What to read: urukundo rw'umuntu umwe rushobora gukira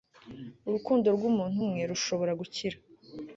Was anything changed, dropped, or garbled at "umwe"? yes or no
no